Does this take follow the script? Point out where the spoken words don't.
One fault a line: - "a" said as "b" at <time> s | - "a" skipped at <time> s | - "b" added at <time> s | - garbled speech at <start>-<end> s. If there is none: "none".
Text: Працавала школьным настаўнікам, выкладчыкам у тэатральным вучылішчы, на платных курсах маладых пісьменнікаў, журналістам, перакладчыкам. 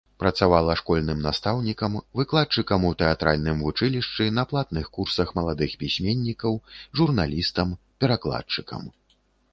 none